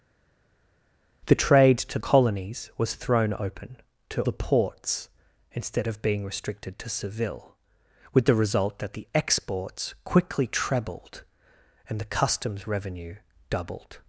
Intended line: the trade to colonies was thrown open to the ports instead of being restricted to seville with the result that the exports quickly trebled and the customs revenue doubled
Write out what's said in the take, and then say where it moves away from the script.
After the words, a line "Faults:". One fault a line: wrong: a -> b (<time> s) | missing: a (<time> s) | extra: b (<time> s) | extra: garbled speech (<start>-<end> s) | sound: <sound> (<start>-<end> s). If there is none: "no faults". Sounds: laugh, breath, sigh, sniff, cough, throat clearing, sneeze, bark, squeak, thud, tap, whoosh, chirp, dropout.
the trade to colonies was thrown open to the ports instead of being restricted to seville with the result that the exports quickly trebled and the customs revenue doubled
Faults:
no faults